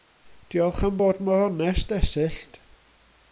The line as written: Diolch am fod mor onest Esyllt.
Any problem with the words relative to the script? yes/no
no